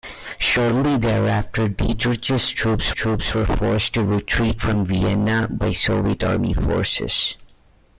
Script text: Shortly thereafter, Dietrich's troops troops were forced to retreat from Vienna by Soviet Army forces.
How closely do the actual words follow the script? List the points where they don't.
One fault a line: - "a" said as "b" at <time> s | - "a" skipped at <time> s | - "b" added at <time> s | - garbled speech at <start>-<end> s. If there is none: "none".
none